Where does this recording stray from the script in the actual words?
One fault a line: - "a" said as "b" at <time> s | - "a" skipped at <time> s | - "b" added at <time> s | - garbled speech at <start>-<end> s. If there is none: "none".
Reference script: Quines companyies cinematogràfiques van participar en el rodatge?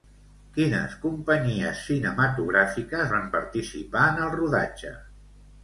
none